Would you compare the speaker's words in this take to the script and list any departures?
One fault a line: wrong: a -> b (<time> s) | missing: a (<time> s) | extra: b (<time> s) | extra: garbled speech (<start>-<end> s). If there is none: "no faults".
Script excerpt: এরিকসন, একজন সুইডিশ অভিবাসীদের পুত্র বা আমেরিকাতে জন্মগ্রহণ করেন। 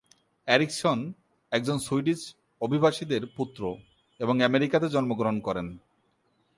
wrong: বা -> এবং (4.2 s)